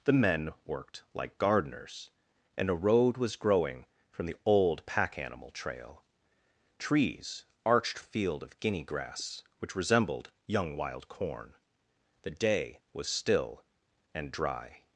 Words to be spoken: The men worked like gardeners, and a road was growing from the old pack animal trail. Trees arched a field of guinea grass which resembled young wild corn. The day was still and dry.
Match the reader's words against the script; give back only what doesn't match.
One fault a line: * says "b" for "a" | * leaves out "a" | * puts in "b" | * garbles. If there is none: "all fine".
all fine